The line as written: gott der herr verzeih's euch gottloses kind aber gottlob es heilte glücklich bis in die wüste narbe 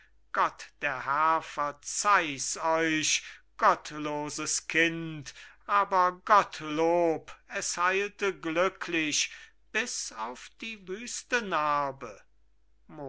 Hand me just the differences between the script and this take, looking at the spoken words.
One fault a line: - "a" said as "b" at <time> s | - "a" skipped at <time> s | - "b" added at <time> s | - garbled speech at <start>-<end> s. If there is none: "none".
- "in" said as "auf" at 10.1 s